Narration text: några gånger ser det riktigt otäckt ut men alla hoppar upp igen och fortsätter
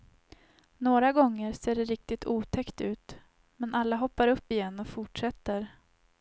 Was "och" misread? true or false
false